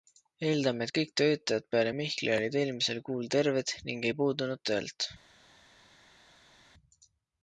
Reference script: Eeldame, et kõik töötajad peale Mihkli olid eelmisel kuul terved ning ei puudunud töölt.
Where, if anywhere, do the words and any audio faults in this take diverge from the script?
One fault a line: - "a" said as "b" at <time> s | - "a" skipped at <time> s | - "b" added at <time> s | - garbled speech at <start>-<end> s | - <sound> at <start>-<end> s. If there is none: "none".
none